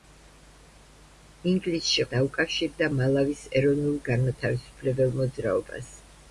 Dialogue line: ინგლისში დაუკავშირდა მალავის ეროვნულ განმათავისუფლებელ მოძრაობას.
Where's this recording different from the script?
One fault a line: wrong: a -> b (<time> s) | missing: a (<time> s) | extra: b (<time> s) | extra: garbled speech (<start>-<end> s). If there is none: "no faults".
no faults